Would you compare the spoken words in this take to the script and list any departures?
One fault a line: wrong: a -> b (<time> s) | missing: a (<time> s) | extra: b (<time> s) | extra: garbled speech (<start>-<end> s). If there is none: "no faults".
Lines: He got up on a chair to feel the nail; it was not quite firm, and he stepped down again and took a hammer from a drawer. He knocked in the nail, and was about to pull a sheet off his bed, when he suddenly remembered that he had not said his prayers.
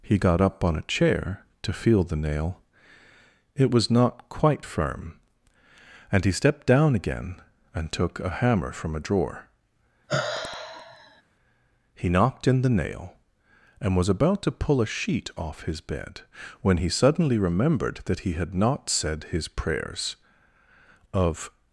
extra: Of (21.1 s)